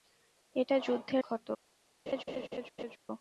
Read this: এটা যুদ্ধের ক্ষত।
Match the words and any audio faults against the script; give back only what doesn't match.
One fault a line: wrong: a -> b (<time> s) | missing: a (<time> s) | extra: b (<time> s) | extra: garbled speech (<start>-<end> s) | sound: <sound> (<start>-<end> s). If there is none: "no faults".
sound: laugh (2.1-3.0 s)